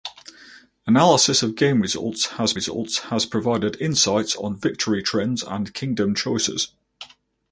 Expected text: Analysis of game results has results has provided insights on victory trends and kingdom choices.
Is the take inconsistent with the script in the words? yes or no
no